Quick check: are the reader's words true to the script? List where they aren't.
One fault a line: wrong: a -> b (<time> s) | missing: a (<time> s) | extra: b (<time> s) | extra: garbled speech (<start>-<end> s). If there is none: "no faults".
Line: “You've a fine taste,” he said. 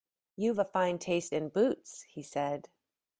extra: in boots (1.3 s)